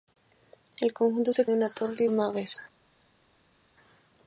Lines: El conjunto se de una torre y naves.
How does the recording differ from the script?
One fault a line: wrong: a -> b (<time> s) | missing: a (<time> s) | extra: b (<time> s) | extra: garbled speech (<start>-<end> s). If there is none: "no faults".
no faults